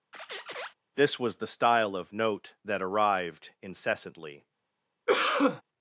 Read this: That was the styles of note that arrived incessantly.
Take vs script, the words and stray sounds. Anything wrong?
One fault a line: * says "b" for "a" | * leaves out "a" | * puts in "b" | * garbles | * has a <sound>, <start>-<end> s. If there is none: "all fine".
* has a squeak, 0.1-0.7 s
* says "This" for "That"
* says "style" for "styles"
* has a cough, 5.1-5.6 s